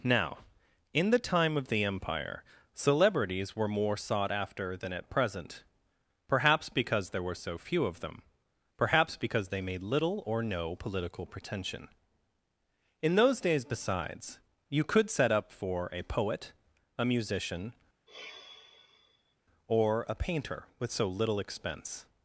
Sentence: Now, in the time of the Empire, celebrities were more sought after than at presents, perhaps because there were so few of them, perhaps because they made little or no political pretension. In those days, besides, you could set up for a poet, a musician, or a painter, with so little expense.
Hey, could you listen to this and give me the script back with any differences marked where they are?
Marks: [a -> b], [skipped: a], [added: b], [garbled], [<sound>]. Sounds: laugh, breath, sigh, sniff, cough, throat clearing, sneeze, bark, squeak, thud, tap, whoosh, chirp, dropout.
Now, in the time of the Empire, celebrities were more sought after than at [presents, -> present] perhaps because there were so few of them, perhaps because they made little or no political pretension. In those days, besides, you could set up for a poet, a musician, [sigh] or a painter, with so little expense.